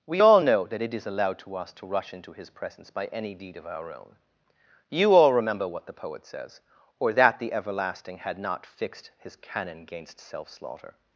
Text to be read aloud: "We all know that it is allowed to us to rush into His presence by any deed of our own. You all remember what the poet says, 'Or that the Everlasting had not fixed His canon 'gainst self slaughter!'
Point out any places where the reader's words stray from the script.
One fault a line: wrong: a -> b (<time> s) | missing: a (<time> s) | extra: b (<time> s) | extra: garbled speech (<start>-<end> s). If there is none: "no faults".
no faults